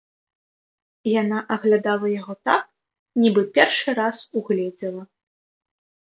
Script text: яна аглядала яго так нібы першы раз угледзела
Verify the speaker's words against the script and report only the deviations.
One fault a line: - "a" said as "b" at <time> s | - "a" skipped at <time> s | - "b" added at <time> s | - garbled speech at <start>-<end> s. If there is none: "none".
none